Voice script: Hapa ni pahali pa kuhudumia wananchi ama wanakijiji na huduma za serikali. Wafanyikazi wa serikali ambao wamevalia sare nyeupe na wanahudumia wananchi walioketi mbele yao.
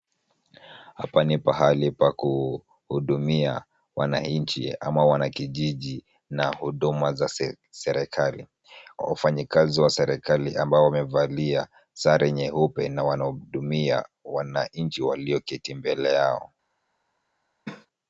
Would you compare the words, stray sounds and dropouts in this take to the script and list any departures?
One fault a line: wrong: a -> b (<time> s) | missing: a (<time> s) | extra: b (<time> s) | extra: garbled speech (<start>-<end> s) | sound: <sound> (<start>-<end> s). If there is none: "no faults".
sound: cough (17.7-17.9 s)